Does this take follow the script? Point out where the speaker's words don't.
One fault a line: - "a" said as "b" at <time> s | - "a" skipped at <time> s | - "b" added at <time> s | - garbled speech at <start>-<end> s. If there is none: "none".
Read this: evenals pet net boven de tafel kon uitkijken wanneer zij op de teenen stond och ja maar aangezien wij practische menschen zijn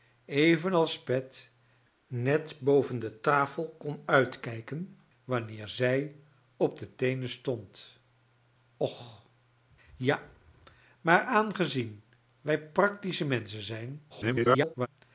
- garbled speech at 14.1-14.9 s